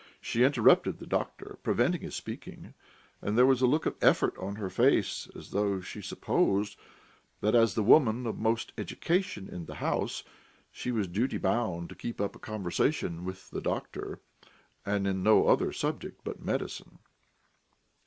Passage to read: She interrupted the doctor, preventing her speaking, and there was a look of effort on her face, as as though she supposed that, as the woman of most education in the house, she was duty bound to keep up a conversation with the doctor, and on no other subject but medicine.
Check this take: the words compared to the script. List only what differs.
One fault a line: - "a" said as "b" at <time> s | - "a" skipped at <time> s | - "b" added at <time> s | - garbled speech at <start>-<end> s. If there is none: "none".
- "her" said as "his" at 2.0 s
- "as" skipped at 5.5 s